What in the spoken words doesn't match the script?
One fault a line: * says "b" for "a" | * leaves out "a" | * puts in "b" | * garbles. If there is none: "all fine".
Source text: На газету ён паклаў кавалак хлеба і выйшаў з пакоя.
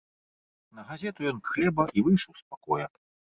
* leaves out "паклаў кавалак"